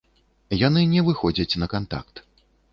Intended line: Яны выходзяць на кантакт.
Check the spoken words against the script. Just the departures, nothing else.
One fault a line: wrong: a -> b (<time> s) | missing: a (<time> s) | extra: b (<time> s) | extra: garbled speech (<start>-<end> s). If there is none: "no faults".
extra: не (0.9 s)